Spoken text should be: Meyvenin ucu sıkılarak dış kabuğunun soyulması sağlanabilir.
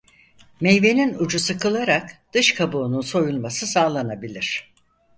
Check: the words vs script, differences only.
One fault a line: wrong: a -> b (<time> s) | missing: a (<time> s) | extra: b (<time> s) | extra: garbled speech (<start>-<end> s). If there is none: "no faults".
no faults